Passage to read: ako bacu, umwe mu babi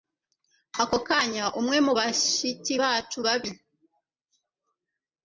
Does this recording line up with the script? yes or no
no